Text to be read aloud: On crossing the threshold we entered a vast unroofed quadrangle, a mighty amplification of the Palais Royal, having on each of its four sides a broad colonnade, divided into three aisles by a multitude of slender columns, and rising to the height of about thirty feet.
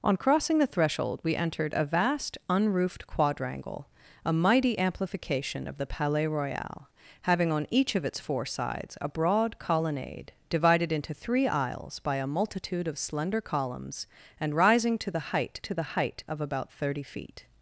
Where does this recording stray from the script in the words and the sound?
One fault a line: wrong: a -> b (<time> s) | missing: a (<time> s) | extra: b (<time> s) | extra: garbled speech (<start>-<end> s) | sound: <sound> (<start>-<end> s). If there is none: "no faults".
extra: to the height (15.6 s)